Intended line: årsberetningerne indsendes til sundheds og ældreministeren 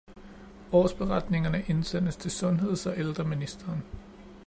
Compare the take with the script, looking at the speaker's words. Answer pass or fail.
pass